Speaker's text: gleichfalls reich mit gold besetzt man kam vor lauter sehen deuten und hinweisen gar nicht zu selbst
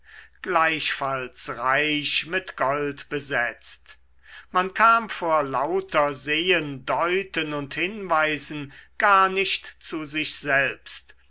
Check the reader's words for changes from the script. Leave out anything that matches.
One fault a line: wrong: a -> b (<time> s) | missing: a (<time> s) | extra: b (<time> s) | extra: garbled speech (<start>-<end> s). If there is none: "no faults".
extra: sich (10.1 s)